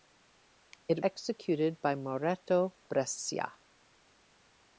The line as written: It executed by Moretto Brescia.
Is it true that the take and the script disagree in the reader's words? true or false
false